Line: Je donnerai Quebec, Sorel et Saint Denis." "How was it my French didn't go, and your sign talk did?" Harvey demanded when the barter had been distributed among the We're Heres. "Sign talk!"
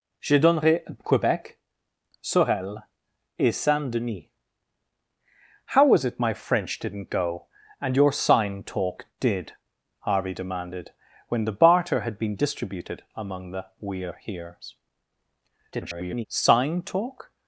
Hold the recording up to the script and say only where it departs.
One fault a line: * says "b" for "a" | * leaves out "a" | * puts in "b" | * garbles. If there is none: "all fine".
* garbles